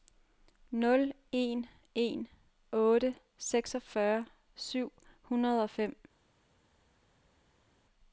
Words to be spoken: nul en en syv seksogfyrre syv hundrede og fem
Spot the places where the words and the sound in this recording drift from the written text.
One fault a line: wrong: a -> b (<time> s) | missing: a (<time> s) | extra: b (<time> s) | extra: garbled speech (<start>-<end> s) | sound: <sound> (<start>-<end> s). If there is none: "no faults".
wrong: syv -> otte (2.7 s)